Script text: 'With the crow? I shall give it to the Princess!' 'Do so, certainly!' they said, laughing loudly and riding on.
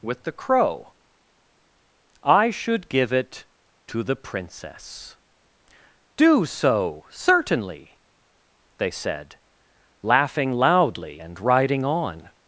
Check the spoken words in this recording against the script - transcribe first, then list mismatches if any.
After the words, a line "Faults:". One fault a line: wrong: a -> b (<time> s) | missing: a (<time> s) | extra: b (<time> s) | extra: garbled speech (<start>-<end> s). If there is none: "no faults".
'With the crow? I should give it to the Princess!' 'Do so, certainly!' they said, laughing loudly and riding on.
Faults:
wrong: shall -> should (2.5 s)